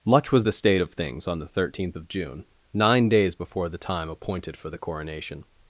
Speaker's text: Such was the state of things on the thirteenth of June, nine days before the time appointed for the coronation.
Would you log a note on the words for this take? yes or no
yes